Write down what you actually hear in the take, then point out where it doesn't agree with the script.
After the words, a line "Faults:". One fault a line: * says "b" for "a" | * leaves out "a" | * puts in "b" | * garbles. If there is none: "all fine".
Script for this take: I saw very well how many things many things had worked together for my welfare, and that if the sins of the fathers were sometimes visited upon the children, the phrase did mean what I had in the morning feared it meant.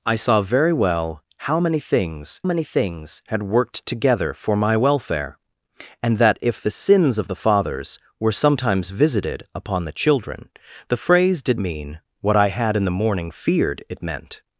I saw very well how many things many things had worked together for my welfare, and that if the sins of the fathers were sometimes visited upon the children, the phrase did mean what I had in the morning feared it meant.
Faults:
all fine